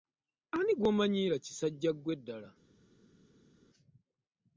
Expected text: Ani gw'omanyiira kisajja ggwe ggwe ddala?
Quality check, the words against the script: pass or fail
fail